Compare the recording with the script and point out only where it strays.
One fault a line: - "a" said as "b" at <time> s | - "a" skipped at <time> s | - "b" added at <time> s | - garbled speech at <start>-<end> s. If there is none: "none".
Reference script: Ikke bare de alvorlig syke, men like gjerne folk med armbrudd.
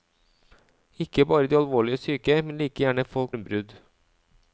- "med" skipped at 3.4 s